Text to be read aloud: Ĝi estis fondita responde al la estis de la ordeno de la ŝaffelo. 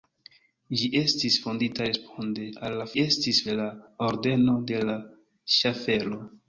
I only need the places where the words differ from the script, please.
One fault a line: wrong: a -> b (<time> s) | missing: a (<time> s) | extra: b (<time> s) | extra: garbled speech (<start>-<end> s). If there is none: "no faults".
no faults